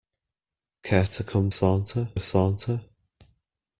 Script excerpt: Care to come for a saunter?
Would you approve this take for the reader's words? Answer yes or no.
no